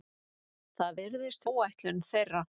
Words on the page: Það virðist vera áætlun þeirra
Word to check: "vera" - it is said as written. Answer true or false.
false